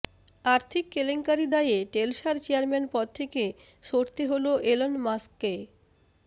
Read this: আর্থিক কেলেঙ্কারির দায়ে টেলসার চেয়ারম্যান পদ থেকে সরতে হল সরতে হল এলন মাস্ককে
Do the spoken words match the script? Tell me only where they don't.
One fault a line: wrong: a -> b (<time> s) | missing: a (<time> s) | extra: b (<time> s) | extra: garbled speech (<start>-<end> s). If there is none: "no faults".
missing: সরতে হল (4.5 s)